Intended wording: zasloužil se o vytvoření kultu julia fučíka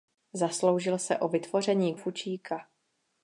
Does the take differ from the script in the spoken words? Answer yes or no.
yes